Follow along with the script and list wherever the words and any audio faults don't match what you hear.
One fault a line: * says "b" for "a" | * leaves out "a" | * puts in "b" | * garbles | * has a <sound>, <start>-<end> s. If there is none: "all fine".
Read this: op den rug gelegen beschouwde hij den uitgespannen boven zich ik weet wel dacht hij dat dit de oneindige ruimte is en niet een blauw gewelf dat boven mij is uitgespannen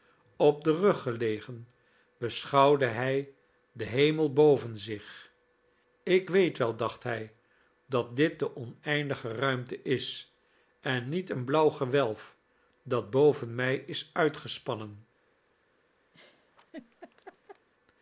* says "hemel" for "uitgespannen"
* has a laugh, 16.1-17.7 s